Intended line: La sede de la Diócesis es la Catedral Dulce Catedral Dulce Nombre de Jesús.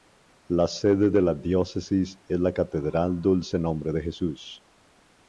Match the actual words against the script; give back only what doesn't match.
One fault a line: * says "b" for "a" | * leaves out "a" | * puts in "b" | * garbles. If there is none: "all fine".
* leaves out "Catedral Dulce"